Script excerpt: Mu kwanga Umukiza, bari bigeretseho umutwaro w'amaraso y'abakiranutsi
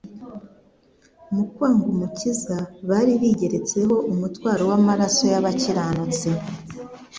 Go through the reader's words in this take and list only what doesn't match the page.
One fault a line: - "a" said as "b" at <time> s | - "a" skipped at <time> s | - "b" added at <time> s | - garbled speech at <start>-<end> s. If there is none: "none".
none